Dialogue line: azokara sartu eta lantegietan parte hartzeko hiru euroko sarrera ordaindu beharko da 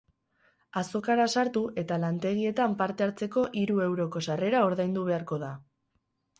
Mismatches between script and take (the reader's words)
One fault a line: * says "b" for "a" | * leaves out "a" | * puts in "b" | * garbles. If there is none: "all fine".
all fine